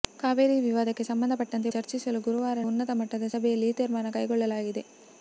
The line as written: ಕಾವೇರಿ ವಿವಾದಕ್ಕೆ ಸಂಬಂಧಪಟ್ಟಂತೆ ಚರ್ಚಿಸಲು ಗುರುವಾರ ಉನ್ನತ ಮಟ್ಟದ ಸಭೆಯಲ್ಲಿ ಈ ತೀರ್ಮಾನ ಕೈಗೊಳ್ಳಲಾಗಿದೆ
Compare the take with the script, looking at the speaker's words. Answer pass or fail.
pass